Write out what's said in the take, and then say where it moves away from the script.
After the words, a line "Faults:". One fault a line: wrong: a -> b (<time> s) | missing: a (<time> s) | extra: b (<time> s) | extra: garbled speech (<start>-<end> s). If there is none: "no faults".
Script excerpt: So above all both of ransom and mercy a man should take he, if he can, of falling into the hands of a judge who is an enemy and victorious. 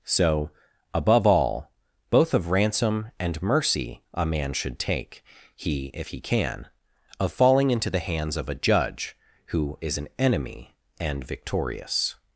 So above all both of ransom and mercy a man should take he, if he can, of falling into the hands of a judge who is an enemy and victorious.
Faults:
no faults